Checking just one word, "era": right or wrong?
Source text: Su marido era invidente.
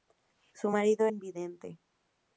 wrong